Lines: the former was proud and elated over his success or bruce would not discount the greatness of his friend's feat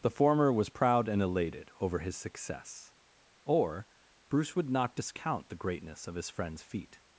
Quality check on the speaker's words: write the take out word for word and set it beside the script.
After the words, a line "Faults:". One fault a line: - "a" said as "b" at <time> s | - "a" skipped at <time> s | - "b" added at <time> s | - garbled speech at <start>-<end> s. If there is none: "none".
the former was proud and elated over his success or bruce would not discount the greatness of his friend's feat
Faults:
none